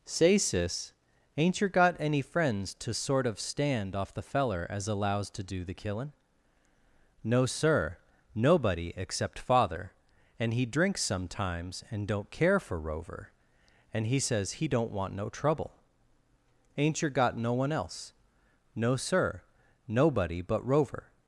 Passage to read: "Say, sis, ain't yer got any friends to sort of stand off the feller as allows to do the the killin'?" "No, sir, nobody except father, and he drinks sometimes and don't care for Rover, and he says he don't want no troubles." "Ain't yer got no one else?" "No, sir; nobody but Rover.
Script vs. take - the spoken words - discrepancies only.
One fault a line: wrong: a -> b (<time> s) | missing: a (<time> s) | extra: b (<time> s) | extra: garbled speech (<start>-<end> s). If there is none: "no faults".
missing: the (5.8 s)
wrong: troubles -> trouble (15.3 s)